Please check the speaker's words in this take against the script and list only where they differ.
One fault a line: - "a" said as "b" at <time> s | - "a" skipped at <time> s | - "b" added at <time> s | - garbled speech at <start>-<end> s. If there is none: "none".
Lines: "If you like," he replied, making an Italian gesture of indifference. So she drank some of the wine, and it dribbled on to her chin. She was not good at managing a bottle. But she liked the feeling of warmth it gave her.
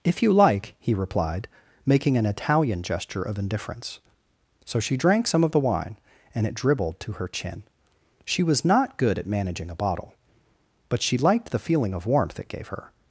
- "on" skipped at 7.0 s